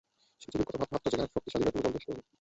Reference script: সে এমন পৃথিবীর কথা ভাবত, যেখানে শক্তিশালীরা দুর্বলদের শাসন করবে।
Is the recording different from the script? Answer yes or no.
yes